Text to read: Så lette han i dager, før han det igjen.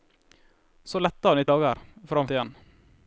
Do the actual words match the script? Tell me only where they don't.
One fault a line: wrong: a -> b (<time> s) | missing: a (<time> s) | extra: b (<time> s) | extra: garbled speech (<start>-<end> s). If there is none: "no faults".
no faults